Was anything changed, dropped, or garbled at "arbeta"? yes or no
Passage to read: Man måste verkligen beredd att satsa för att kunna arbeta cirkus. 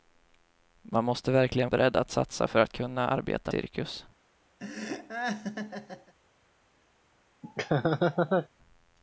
no